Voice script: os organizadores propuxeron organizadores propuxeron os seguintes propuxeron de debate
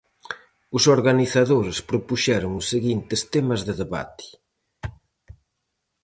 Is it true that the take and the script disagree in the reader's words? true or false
true